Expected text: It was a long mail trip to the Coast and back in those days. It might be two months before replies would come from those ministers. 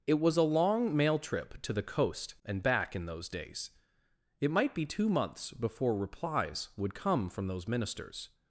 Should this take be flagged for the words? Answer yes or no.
no